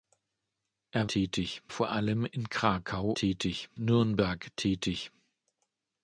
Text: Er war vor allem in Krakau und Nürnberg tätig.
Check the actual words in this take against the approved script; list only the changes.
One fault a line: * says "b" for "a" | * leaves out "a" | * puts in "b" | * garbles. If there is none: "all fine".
* says "tätig" for "war"
* says "tätig" for "und"